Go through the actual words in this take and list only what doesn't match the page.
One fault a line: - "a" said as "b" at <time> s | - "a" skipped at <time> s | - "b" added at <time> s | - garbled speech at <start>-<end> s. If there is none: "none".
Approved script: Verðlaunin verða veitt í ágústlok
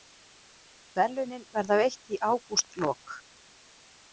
none